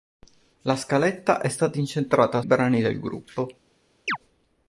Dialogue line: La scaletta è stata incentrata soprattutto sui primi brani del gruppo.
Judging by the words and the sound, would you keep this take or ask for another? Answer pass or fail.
fail